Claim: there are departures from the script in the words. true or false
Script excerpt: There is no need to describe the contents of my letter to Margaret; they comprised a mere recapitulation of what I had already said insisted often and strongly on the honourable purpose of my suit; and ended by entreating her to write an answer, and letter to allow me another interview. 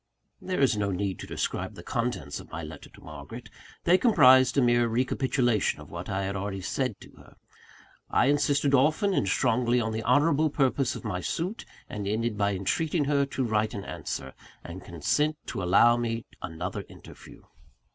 true